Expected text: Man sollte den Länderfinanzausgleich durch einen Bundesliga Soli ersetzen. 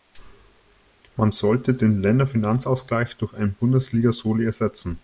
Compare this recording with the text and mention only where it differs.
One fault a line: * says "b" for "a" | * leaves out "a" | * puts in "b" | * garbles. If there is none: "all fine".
all fine